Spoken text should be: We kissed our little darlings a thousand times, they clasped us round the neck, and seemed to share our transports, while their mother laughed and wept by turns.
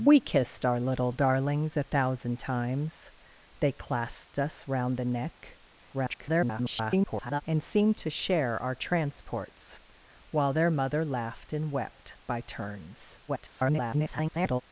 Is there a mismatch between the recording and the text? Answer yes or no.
yes